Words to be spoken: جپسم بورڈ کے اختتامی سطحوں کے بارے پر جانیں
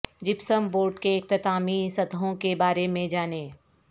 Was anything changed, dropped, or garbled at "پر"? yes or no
yes